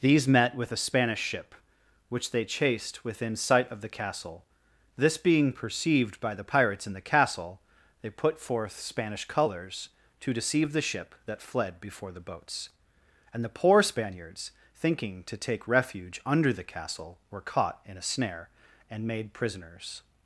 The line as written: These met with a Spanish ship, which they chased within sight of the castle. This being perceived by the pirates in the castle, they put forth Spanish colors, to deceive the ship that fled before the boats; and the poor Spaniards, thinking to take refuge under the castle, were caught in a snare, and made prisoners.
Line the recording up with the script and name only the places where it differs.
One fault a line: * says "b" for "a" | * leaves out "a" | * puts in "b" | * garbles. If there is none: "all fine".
all fine